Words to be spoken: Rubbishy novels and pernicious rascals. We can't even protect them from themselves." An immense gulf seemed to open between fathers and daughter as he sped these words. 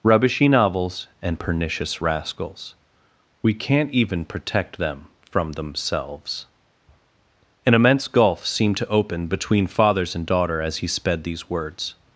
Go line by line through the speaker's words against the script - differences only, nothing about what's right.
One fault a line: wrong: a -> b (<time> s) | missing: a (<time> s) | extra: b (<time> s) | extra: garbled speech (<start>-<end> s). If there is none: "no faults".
no faults